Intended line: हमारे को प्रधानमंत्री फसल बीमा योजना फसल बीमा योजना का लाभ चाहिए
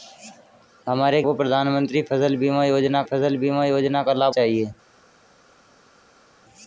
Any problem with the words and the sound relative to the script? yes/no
no